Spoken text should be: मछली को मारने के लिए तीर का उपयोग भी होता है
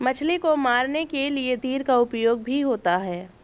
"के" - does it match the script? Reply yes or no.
yes